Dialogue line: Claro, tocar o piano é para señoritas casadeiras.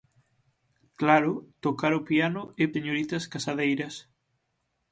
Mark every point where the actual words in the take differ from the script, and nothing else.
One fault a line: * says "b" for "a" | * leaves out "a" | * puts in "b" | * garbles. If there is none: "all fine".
* leaves out "para"